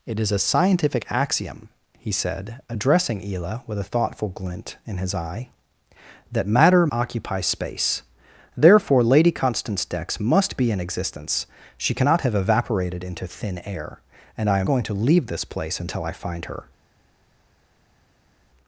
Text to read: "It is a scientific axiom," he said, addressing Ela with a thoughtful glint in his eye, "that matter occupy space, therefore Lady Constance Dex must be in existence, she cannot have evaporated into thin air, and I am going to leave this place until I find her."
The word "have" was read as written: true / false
true